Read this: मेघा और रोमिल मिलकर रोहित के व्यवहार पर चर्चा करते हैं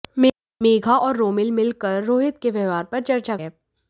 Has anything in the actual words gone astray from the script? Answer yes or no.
yes